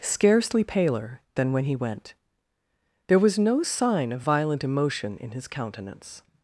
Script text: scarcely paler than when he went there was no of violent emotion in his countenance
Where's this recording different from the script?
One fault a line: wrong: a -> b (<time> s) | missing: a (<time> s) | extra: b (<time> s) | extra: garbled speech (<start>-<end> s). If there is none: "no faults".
extra: sign (3.6 s)